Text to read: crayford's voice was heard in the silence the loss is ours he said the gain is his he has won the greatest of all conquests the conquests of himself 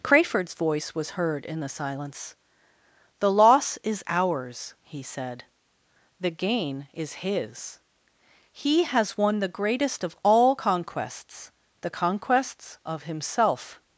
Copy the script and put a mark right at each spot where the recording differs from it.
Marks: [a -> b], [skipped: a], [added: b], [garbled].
crayford's voice was heard in the silence the loss is ours he said the gain is his he has won the greatest of all conquests the conquests of himself